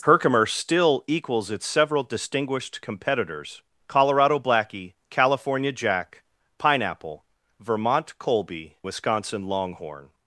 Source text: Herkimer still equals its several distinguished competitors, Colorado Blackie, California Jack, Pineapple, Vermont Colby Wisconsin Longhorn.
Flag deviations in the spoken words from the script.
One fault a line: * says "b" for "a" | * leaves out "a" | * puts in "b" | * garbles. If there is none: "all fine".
all fine